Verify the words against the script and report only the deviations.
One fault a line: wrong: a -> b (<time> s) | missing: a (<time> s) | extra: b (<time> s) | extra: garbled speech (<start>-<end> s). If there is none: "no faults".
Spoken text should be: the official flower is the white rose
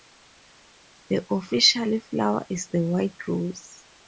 no faults